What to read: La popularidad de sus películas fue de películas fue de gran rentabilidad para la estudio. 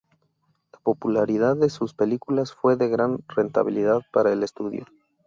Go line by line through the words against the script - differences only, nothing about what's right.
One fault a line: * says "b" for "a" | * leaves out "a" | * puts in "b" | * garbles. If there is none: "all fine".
* leaves out "películas fue de"
* says "el" for "la"